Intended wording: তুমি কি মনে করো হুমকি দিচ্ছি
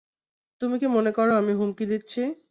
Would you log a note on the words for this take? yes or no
yes